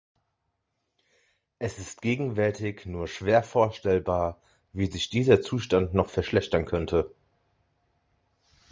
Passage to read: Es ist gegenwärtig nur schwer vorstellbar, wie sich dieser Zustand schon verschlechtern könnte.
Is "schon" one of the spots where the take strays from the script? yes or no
yes